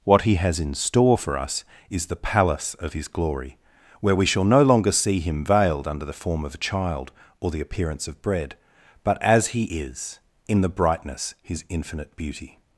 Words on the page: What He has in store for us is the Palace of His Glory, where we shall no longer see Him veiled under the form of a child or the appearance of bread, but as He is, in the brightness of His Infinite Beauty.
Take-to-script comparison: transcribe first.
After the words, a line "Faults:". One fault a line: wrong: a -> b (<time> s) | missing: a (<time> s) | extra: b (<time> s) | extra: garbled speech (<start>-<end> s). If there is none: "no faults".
What He has in store for us is the Palace of His Glory, where we shall no longer see Him veiled under the form of a child or the appearance of bread, but as He is, in the brightness His Infinite Beauty.
Faults:
missing: of (11.3 s)